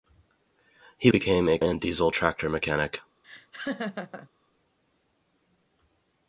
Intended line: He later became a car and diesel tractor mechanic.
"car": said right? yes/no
no